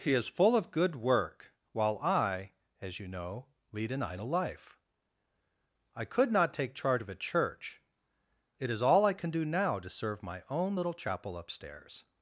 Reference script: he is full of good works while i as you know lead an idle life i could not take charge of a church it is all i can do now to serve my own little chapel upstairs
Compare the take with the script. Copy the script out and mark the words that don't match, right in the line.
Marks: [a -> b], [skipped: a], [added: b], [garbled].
he is full of good [works -> work] while i as you know lead an idle life i could not take charge of a church it is all i can do now to serve my own little chapel upstairs